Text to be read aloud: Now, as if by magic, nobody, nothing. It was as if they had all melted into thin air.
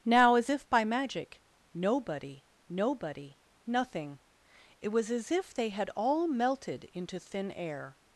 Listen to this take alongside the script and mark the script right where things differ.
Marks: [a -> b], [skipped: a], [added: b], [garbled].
Now, as if by magic, nobody, [added: nobody] nothing. It was as if they had all melted into thin air.